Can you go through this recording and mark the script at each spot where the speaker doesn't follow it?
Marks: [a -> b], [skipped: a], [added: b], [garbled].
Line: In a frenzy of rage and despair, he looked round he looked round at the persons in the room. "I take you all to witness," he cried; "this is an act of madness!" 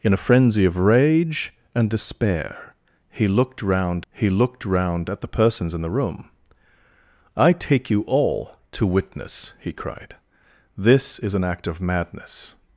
In a frenzy of rage and despair, he looked round he looked round at the persons in the room. "I take you all to witness," he cried; "this is an act of madness!"